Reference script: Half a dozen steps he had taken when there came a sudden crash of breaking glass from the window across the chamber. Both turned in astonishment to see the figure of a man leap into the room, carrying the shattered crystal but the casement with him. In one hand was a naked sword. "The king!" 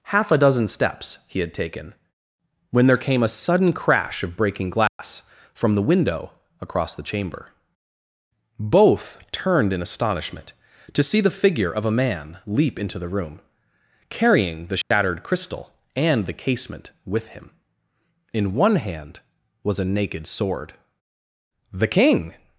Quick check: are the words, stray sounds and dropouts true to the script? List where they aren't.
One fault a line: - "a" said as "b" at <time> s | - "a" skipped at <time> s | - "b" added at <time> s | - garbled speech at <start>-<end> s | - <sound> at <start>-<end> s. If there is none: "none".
- dropout at 4.9-5.0 s
- dropout at 14.8-14.9 s
- "but" said as "and" at 16.0 s